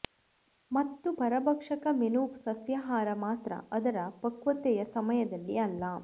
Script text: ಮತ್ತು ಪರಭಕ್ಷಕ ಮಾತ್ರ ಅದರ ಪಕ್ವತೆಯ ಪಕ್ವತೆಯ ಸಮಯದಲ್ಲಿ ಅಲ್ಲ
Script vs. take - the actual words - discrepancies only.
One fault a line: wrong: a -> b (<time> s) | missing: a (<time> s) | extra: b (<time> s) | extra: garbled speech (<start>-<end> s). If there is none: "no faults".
extra: ಮೆನು ಸಸ್ಯಾಹಾರ (1.9 s)
missing: ಪಕ್ವತೆಯ (4.8 s)